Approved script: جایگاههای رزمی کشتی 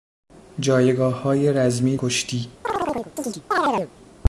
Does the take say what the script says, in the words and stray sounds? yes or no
no